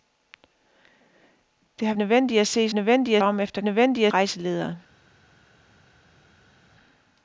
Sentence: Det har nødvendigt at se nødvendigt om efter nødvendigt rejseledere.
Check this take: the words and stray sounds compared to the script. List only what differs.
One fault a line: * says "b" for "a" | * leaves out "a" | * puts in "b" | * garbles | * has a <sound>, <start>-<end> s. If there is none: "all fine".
all fine